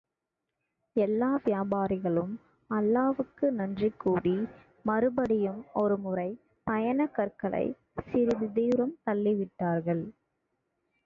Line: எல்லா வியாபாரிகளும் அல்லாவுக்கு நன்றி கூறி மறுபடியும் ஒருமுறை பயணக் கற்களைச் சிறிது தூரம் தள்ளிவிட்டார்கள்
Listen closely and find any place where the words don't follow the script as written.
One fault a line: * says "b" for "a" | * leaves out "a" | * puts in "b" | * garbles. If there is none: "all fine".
all fine